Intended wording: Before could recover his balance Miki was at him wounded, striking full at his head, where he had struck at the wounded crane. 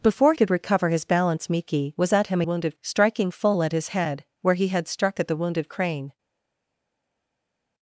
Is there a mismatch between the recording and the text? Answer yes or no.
no